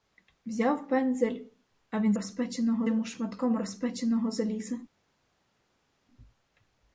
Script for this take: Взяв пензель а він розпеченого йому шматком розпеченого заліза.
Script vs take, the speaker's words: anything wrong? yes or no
no